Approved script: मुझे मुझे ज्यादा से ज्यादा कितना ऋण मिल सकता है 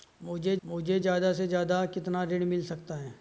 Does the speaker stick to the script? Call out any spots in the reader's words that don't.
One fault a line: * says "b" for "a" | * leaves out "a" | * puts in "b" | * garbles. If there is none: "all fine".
all fine